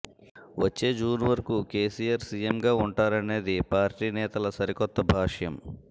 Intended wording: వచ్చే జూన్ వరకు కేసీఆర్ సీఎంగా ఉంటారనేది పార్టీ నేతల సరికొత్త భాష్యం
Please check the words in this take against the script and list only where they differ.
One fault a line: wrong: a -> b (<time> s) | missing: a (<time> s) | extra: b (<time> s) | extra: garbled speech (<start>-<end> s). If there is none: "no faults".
no faults